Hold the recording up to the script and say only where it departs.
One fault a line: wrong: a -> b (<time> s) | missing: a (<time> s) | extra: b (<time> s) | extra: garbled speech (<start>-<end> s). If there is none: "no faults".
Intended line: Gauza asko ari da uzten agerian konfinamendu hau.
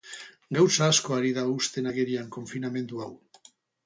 no faults